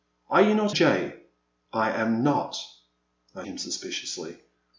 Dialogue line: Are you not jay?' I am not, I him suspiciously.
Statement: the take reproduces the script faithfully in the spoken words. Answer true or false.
true